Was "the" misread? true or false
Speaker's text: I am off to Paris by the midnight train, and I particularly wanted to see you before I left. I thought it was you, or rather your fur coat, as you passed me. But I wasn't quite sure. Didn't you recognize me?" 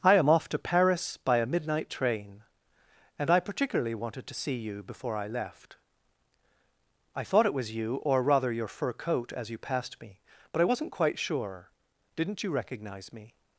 true